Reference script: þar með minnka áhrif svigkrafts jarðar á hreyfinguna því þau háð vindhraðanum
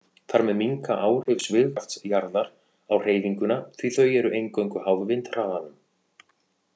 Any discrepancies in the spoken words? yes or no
yes